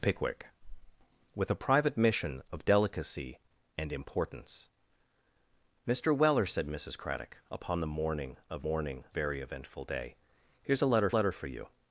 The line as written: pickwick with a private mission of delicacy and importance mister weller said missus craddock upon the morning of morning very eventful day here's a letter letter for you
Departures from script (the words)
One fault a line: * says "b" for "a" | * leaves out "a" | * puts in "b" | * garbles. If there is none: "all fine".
all fine